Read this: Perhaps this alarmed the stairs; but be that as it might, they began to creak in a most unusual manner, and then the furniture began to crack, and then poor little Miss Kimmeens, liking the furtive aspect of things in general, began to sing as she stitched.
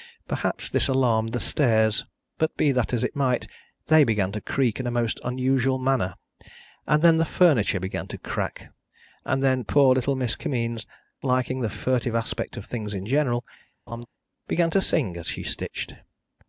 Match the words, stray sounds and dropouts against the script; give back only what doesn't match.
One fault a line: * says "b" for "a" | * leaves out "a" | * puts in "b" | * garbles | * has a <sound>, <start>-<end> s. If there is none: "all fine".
* has a laugh, 13.9-14.1 s